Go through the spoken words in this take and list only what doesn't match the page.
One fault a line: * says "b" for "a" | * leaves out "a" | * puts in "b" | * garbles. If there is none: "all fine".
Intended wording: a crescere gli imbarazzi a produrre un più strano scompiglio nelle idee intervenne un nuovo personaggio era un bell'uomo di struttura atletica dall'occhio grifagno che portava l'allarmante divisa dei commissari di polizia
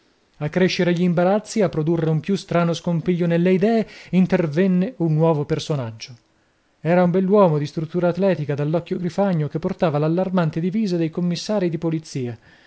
all fine